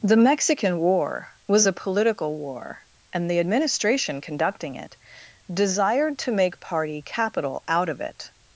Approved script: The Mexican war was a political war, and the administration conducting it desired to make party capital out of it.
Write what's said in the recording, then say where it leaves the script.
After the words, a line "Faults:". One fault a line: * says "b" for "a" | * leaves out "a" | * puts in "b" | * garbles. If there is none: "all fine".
The Mexican war was a political war, and the administration conducting it desired to make party capital out of it.
Faults:
all fine